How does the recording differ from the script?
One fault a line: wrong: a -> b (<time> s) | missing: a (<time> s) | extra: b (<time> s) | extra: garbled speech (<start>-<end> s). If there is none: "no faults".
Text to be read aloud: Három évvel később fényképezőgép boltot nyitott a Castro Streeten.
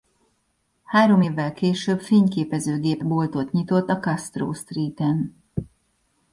no faults